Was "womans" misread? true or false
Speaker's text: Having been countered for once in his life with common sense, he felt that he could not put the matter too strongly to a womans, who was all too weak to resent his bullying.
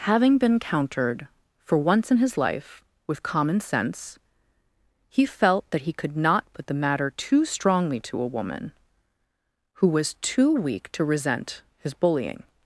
true